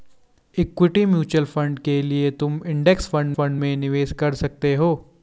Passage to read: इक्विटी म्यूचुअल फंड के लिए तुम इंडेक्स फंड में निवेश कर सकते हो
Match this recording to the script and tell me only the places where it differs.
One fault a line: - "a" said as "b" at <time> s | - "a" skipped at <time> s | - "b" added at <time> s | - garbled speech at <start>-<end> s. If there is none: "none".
- "फंड" added at 3.3 s